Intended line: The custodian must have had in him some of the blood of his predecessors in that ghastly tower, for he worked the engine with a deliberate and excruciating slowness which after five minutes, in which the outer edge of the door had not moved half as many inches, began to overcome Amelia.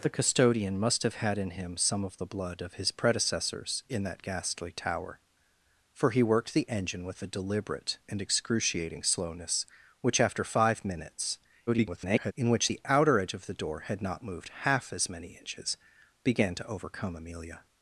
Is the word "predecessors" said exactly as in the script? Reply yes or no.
yes